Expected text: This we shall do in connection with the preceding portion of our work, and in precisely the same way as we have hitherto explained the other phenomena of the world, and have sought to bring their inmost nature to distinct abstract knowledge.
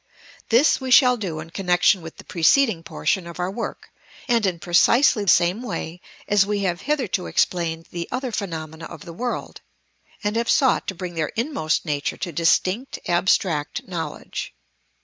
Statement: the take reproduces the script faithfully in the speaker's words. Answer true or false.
false